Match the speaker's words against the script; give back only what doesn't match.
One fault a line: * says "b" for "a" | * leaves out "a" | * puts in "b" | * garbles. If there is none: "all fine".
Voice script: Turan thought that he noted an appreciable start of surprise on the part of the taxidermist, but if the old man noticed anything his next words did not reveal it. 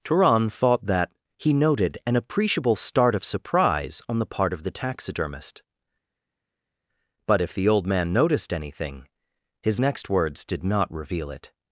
all fine